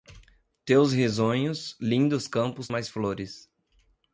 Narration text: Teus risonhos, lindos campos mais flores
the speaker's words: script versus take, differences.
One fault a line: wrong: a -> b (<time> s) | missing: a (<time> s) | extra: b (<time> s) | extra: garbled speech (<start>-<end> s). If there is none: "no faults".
no faults